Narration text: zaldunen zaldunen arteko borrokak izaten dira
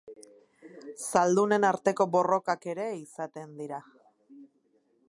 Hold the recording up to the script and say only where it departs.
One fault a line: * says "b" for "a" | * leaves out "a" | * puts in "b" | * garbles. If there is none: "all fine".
* leaves out "zaldunen"
* puts in "ere"